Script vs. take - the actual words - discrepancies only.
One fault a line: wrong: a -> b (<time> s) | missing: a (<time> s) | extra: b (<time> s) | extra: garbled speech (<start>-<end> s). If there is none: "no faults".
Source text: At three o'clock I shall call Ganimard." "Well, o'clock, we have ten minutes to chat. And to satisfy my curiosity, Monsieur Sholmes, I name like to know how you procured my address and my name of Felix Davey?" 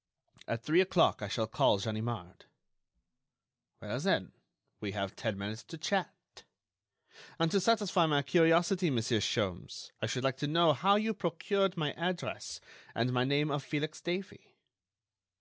wrong: o'clock -> then (4.0 s)
wrong: name -> should (10.1 s)